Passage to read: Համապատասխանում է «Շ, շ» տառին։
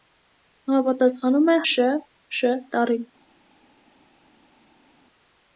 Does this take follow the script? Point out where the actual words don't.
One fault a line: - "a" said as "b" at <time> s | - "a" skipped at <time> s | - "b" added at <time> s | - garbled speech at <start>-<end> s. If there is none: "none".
none